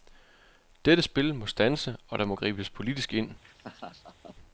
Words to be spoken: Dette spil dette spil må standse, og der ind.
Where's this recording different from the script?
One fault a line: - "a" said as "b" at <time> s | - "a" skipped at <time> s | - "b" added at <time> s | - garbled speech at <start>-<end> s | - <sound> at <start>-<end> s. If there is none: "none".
- "dette spil" skipped at 1.4 s
- "må gribes politisk" added at 2.2 s
- laugh at 3.4-4.4 s